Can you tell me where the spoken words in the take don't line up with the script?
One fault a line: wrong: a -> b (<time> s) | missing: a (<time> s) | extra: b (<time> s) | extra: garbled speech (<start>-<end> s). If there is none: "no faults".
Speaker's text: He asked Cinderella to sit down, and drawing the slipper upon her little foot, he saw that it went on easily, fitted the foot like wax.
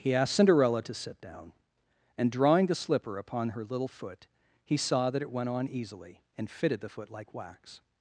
extra: and (6.4 s)